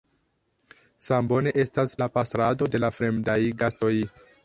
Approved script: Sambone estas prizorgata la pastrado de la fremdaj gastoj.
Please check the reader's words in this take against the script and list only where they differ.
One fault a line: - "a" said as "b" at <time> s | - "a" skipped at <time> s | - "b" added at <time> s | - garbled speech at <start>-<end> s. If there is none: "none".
- "prizorgata" skipped at 1.9 s